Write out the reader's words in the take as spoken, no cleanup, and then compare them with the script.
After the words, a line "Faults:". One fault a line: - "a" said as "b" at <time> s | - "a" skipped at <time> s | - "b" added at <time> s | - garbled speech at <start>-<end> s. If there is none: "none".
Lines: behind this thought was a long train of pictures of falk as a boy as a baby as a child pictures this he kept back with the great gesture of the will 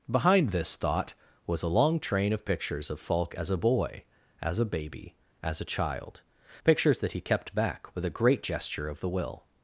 behind this thought was a long train of pictures of falk as a boy as a baby as a child pictures that he kept back with a great gesture of the will
Faults:
- "this" said as "that" at 7.0 s
- "the" said as "a" at 8.1 s